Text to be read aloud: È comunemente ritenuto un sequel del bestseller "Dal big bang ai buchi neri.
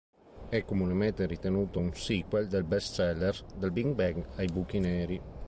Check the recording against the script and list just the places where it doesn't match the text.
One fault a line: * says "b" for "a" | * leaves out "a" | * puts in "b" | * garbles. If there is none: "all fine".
all fine